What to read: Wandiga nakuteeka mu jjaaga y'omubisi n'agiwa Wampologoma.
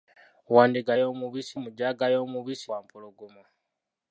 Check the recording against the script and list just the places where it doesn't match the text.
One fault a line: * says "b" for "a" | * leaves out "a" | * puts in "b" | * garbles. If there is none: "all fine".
* says "y'omubisi" for "nakuteeka"
* leaves out "n'agiwa"